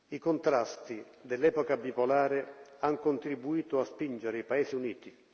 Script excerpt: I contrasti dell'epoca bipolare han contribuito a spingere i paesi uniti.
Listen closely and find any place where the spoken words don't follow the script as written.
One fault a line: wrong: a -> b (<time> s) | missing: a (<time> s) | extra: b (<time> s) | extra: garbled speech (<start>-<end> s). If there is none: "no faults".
no faults